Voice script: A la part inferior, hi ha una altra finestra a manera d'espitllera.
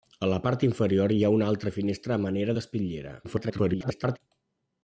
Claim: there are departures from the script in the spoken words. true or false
true